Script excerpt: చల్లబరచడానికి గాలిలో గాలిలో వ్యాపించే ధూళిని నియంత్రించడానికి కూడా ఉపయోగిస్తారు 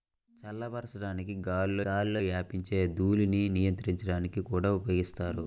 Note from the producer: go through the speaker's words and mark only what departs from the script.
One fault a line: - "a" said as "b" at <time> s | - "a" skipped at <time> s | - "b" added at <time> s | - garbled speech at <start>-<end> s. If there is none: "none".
none